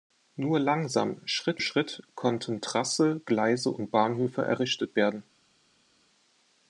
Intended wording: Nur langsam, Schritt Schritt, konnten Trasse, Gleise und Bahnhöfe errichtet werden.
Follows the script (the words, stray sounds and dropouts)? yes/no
yes